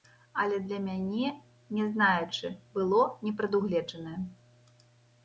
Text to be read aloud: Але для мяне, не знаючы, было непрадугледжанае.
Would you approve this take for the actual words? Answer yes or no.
yes